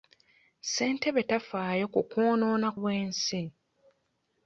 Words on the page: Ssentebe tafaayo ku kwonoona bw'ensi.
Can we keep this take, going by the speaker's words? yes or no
yes